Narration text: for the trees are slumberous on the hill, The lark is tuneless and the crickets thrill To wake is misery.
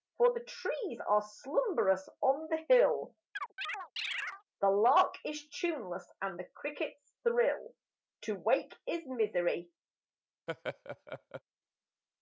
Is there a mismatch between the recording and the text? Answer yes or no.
no